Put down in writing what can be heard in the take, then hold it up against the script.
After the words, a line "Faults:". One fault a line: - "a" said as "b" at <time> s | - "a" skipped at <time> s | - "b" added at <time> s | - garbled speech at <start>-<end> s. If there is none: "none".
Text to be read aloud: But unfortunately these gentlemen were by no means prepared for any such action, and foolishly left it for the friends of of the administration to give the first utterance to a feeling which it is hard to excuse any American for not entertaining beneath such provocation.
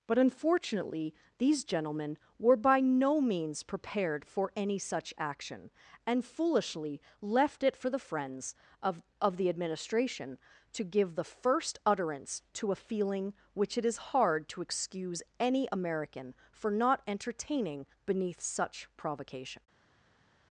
But unfortunately these gentlemen were by no means prepared for any such action, and foolishly left it for the friends of of the administration to give the first utterance to a feeling which it is hard to excuse any American for not entertaining beneath such provocation.
Faults:
none